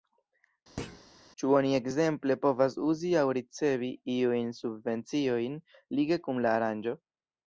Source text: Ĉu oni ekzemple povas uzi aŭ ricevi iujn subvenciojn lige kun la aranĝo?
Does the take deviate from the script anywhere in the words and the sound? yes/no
yes